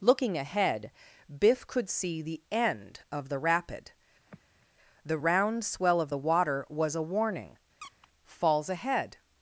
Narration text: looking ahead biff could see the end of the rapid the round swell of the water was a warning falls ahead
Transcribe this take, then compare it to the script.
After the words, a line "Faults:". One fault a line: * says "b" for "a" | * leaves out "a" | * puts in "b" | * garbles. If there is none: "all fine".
looking ahead biff could see the end of the rapid the round swell of the water was a warning falls ahead
Faults:
all fine